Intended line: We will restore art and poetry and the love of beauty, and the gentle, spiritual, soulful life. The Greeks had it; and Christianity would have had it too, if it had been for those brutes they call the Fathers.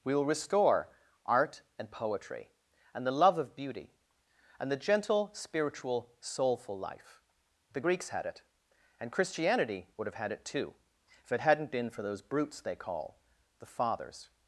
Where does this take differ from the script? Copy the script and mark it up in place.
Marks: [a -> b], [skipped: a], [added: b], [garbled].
We will restore art and poetry and the love of beauty, and the gentle, spiritual, soulful life. The Greeks had it; and Christianity would have had it too, if it [had -> hadn't] been for those brutes they call the Fathers.